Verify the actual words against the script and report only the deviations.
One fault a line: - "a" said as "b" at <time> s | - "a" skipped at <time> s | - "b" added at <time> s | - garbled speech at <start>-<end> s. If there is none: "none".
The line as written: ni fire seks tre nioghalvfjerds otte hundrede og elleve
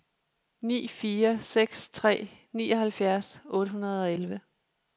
none